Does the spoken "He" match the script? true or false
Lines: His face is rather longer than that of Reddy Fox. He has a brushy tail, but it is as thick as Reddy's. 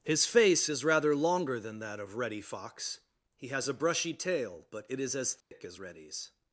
true